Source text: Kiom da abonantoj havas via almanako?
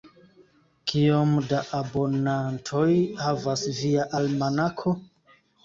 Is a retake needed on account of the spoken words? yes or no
no